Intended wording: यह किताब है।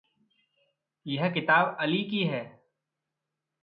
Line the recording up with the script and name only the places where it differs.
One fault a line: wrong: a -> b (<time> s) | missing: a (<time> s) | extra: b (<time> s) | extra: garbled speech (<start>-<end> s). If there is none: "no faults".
extra: अली की (1.8 s)